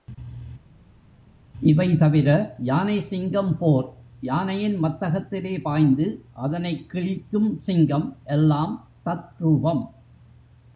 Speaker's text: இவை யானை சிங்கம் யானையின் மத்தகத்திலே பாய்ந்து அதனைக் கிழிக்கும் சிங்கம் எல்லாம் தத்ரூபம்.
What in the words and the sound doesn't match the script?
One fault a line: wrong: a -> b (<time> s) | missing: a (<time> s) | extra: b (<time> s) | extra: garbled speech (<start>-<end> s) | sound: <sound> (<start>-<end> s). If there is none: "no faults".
extra: தவிர (2.0 s)
extra: போர் (3.6 s)